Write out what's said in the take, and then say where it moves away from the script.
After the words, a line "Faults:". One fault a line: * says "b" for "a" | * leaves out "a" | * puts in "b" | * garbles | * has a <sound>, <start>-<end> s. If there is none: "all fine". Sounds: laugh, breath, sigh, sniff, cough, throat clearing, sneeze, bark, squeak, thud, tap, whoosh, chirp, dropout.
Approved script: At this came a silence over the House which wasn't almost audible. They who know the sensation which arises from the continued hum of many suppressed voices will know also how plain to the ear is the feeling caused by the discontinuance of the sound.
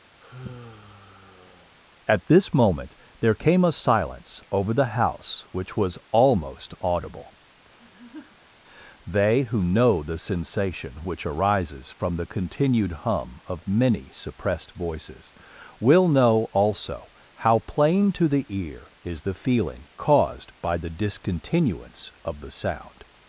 At this moment there came a silence over the House which was almost audible. They who know the sensation which arises from the continued hum of many suppressed voices will know also how plain to the ear is the feeling caused by the discontinuance of the sound.
Faults:
* has a sigh, 0.2-1.8 s
* puts in "moment there"
* says "was" for "wasn't"
* has a laugh, 7.8-8.6 s